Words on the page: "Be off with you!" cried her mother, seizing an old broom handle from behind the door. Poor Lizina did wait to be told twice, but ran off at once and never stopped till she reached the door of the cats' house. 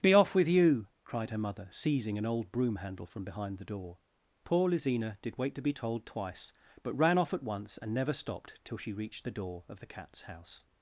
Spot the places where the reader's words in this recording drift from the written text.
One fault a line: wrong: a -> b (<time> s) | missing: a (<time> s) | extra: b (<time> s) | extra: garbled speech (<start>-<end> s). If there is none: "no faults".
no faults